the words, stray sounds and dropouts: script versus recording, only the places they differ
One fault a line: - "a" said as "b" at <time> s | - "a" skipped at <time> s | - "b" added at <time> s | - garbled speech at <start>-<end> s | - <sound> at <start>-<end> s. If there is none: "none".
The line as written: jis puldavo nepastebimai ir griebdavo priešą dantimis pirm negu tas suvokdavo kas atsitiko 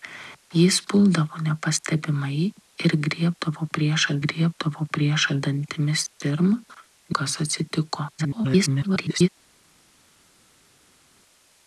- "griebdavo priešą" added at 4.2 s
- "negu tas suvokdavo" skipped at 6.5 s
- garbled speech at 8.2-9.3 s